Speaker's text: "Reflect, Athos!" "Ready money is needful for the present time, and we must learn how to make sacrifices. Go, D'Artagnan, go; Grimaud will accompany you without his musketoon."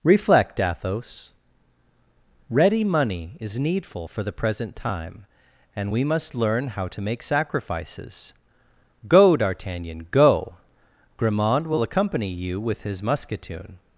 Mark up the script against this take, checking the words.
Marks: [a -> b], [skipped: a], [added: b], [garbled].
"Reflect, Athos!" "Ready money is needful for the present time, and we must learn how to make sacrifices. Go, D'Artagnan, go; Grimaud will accompany you [without -> with] his musketoon."